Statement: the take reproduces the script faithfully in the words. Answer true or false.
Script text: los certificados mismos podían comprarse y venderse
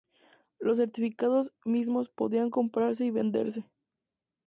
true